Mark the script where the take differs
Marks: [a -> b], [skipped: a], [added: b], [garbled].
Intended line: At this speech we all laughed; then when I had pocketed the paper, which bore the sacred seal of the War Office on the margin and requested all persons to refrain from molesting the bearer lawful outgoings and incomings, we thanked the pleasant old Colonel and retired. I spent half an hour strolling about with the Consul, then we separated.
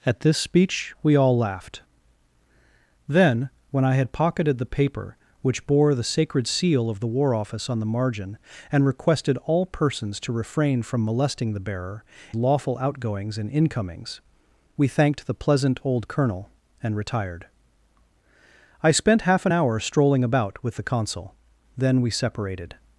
At this speech we all laughed; then when I had pocketed the paper, which bore the sacred seal of the War Office on the margin and requested all persons to refrain from molesting the bearer lawful outgoings and incomings, we thanked the pleasant old Colonel and retired. I spent half an hour strolling about with the Consul, then we separated.